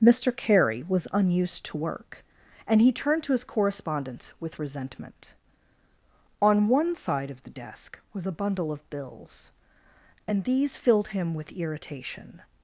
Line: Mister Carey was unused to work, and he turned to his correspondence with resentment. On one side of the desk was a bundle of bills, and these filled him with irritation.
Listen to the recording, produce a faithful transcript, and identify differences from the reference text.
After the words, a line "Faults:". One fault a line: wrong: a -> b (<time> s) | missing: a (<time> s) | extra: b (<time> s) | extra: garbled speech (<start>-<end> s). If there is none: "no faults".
Mister Carey was unused to work, and he turned to his correspondence with resentment. On one side of the desk was a bundle of bills, and these filled him with irritation.
Faults:
no faults